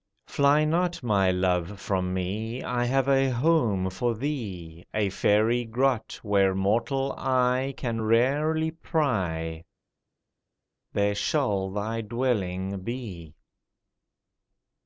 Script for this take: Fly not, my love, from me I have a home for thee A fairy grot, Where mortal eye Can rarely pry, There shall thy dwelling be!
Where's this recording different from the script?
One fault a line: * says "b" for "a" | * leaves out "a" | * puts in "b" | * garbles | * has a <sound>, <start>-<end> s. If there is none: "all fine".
all fine